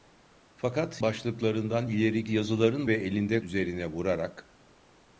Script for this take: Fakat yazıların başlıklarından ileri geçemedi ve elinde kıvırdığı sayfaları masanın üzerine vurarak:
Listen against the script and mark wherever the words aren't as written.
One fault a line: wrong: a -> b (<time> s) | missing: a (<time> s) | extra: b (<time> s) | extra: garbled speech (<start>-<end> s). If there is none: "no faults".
missing: yazıların (1.0 s)
wrong: geçemedi -> yazıların (2.3 s)
missing: kıvırdığı sayfaları masanın (3.4 s)